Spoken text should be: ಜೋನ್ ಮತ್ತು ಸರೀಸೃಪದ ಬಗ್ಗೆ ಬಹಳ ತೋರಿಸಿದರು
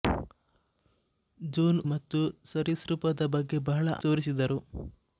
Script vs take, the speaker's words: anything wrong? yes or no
no